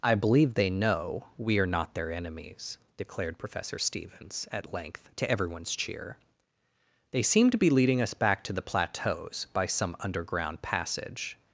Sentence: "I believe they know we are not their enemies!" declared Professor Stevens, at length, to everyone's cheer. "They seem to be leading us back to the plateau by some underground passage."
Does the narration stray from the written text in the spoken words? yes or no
yes